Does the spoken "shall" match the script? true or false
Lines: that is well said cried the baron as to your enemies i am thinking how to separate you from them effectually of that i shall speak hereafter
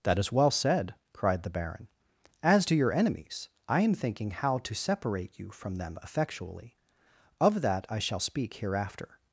true